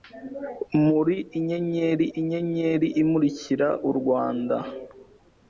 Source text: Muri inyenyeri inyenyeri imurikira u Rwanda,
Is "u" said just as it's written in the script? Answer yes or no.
yes